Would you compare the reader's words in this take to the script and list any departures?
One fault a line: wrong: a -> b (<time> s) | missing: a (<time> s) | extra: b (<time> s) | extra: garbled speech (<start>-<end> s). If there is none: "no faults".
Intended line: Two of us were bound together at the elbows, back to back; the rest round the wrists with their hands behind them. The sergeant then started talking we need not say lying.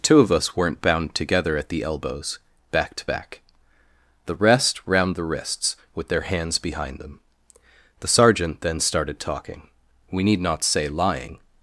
wrong: were -> weren't (0.6 s)